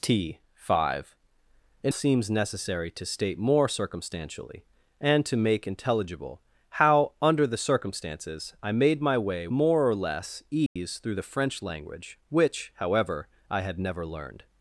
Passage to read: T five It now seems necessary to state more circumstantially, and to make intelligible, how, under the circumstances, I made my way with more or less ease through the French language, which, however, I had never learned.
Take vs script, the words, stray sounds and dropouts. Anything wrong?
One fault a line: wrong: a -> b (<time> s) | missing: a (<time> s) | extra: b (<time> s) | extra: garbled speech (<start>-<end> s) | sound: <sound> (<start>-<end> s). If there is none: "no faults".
missing: now (1.9 s)
missing: with (9.5 s)
sound: dropout (10.7-10.8 s)